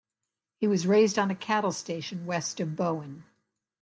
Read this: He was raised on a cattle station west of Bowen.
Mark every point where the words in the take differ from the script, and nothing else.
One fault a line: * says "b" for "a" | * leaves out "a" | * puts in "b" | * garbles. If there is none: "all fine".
all fine